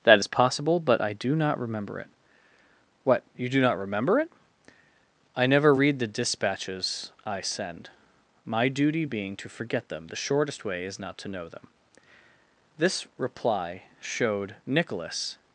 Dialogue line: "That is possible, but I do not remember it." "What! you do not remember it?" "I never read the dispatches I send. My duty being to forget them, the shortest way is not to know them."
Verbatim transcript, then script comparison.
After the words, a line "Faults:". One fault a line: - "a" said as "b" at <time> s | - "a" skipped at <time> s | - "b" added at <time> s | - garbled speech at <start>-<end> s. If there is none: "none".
"That is possible, but I do not remember it." "What! you do not remember it?" "I never read the dispatches I send. My duty being to forget them, the shortest way is not to know them." This reply showed Nicholas
Faults:
- "This reply showed Nicholas" added at 12.8 s